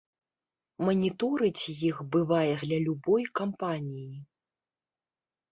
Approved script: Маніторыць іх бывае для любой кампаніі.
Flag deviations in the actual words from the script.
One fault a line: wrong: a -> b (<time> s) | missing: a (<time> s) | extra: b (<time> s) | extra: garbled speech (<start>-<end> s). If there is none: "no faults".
no faults